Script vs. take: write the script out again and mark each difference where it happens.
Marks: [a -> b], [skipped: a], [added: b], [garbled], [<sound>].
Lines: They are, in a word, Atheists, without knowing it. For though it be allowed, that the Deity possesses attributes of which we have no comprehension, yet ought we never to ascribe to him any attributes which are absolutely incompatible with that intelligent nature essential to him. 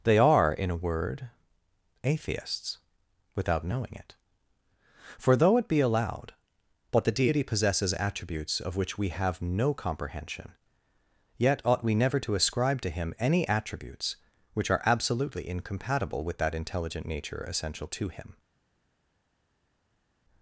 They are, in a word, Atheists, without knowing it. For though it be allowed, [that -> but] the Deity possesses attributes of which we have no comprehension, yet ought we never to ascribe to him any attributes which are absolutely incompatible with that intelligent nature essential to him.